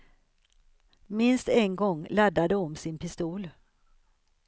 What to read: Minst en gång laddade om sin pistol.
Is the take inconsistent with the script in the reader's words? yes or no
no